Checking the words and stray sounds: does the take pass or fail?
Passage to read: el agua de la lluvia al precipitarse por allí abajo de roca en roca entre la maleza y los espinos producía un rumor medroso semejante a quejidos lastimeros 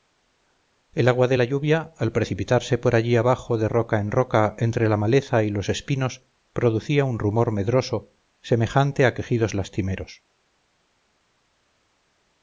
pass